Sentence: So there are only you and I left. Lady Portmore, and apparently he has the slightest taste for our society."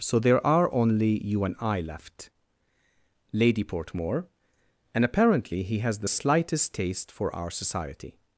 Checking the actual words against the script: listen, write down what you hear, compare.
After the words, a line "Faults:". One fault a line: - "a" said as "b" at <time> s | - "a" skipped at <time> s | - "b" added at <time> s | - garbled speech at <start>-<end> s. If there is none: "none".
So there are only you and I left. Lady Portmore, and apparently he has the slightest taste for our society."
Faults:
none